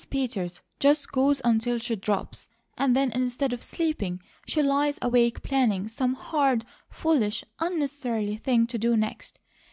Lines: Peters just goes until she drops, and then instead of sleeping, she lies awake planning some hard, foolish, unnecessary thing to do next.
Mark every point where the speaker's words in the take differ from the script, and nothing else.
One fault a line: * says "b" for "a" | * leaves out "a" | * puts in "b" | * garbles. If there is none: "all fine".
all fine